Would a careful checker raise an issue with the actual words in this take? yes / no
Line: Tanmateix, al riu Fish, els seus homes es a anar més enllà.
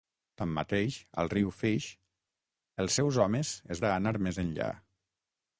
no